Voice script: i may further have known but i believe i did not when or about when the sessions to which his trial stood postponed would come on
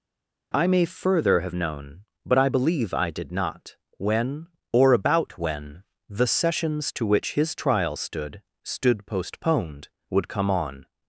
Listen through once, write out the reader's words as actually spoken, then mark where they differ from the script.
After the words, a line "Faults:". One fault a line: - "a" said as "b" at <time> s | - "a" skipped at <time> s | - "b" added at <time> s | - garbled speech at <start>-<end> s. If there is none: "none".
i may further have known but i believe i did not when or about when the sessions to which his trial stood stood postponed would come on
Faults:
- "stood" added at 8.6 s